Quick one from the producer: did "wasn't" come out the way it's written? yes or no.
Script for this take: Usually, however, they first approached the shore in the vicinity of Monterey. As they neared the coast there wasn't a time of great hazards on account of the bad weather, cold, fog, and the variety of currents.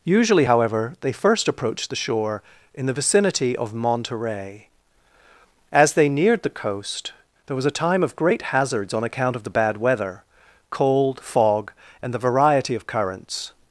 no